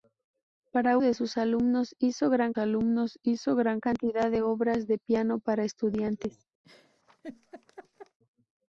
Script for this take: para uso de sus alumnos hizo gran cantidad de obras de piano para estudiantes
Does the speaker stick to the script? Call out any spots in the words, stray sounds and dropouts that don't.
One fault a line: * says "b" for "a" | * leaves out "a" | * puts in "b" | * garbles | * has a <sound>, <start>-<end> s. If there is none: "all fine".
* leaves out "uso"
* puts in "alumnos hizo gran"
* has a laugh, 6.6-8.2 s